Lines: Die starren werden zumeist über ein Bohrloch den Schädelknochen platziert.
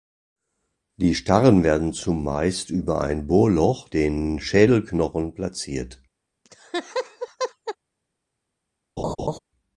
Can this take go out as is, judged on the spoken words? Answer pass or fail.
pass